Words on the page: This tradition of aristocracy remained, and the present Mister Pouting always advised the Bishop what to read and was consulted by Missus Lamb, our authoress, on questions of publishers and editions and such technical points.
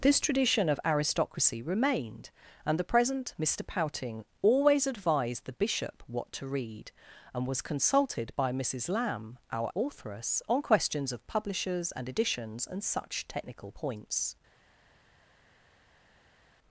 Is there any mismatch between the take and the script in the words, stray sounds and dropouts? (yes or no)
no